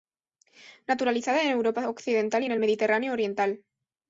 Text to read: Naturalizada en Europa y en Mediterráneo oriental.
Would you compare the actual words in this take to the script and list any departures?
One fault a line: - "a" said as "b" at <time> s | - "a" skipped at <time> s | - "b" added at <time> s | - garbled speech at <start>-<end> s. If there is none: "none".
- "occidental" added at 1.9 s
- "el" added at 2.5 s